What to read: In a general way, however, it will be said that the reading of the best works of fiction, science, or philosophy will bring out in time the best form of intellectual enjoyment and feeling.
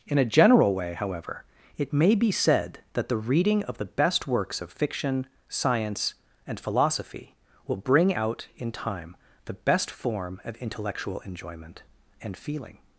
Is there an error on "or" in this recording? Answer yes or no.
yes